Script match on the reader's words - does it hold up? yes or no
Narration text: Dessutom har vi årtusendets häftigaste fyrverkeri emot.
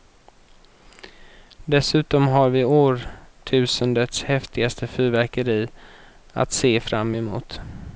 no